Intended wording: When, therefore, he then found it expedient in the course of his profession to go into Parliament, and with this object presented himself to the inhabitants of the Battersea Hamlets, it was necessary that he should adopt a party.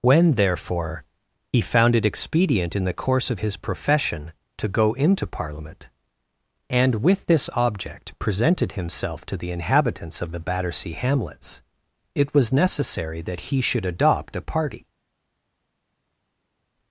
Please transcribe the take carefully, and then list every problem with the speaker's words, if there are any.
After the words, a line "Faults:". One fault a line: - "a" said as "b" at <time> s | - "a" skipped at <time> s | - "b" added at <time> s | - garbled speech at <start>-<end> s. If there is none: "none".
When, therefore, he found it expedient in the course of his profession to go into Parliament, and with this object presented himself to the inhabitants of the Battersea Hamlets, it was necessary that he should adopt a party.
Faults:
- "then" skipped at 1.6 s